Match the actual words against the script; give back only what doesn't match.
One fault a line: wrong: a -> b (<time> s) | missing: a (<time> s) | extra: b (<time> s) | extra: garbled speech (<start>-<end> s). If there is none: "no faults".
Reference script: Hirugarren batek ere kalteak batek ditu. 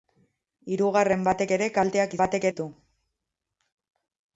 no faults